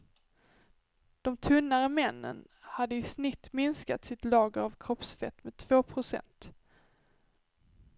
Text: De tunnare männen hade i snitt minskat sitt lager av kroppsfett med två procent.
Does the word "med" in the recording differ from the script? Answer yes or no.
no